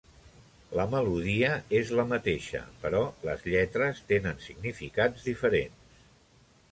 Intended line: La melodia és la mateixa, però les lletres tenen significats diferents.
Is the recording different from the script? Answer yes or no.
no